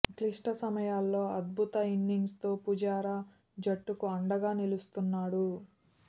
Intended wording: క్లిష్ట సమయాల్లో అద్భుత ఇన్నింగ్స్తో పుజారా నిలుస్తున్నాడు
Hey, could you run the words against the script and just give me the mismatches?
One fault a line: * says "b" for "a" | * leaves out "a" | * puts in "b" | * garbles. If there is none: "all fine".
* puts in "జట్టుకు అండగా"